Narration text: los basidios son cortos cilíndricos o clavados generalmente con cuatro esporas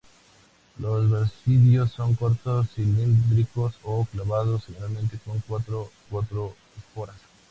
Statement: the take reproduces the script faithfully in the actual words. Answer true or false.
false